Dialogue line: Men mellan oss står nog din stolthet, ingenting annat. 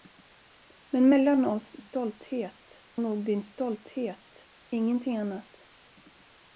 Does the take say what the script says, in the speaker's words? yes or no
no